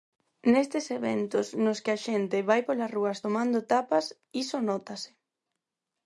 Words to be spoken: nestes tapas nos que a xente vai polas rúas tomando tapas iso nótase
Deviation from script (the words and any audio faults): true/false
true